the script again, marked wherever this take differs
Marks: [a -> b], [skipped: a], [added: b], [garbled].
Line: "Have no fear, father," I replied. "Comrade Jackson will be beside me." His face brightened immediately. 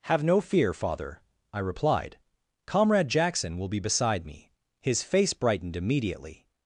"Have no fear, father," I replied. "Comrade Jackson will be beside me." His face brightened immediately.